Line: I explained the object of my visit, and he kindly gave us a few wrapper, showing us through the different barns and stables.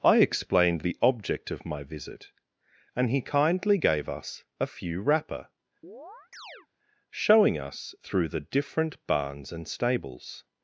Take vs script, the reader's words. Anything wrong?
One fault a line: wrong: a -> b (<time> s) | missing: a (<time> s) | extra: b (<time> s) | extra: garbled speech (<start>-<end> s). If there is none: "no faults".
no faults